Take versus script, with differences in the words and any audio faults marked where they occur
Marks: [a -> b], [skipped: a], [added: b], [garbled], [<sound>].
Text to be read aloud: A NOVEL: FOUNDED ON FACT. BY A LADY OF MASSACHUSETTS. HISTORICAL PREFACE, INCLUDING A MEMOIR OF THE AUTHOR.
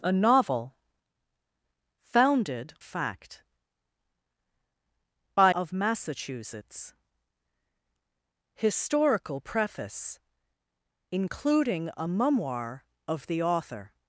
A NOVEL: FOUNDED [skipped: ON] FACT. BY [skipped: A LADY] OF MASSACHUSETTS. HISTORICAL PREFACE, INCLUDING A MEMOIR OF THE AUTHOR.